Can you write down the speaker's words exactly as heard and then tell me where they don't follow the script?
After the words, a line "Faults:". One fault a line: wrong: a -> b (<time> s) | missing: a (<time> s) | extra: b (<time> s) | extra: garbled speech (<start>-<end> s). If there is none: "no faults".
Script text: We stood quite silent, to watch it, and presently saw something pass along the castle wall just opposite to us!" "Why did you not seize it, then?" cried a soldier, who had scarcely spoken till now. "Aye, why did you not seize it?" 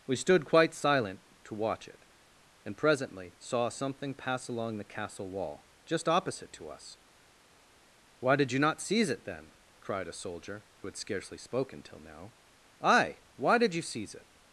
We stood quite silent, to watch it, and presently saw something pass along the castle wall just opposite to us!" "Why did you not seize it, then?" cried a soldier, who had scarcely spoken till now. "Aye, why did you seize it?"
Faults:
missing: not (13.8 s)